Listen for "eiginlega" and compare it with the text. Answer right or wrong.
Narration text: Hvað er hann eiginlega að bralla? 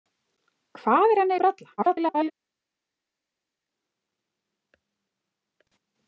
wrong